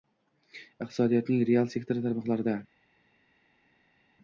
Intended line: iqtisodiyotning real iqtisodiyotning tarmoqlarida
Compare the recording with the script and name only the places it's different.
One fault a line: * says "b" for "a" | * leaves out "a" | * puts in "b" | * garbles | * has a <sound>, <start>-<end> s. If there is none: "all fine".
* says "sektori" for "iqtisodiyotning"